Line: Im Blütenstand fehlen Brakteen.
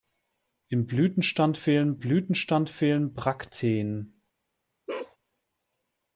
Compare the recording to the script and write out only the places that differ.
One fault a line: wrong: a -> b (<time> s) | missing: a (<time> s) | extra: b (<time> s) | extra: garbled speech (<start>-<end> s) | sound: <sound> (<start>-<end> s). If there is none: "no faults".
extra: Blütenstand fehlen (2.0 s)
sound: bark (4.9-5.2 s)